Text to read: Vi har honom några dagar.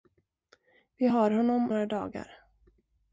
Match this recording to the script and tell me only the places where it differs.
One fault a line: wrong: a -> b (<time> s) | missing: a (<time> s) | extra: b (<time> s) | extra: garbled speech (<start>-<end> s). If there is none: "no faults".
no faults